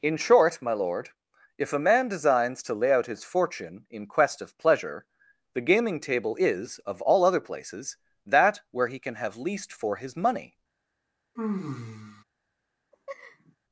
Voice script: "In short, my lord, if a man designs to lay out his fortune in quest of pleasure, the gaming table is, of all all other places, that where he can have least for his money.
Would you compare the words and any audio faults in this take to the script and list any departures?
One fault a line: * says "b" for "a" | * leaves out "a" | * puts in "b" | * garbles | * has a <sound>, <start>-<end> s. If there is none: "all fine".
* leaves out "all"
* has a sigh, 11.4-12.2 s
* has a laugh, 12.9-13.6 s